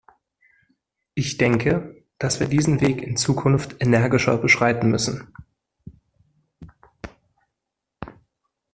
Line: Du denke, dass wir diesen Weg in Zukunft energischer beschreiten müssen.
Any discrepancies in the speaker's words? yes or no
yes